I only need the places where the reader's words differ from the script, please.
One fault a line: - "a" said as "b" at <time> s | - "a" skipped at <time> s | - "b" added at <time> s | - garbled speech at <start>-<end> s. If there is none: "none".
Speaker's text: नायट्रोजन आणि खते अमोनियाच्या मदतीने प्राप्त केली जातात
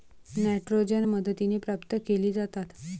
- "आणि खते अमोनियाच्या" skipped at 1.0 s